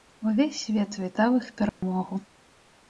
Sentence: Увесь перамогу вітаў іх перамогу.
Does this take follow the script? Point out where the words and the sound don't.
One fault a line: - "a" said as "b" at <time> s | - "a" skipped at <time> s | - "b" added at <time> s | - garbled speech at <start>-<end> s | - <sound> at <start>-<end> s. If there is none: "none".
- "перамогу" said as "свет" at 0.6 s
- dropout at 1.7-1.8 s